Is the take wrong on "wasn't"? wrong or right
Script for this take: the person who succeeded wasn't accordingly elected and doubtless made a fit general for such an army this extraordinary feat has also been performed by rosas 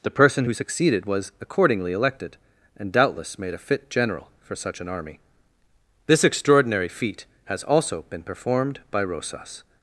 wrong